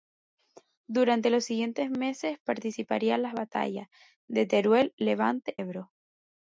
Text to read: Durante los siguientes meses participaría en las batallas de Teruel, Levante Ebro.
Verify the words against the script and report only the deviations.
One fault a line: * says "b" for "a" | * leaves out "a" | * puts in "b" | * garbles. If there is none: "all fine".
all fine